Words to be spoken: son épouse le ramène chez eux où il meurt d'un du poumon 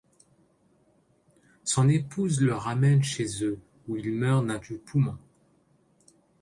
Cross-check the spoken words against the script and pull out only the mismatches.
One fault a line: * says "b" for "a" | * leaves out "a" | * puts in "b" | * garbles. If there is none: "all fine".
all fine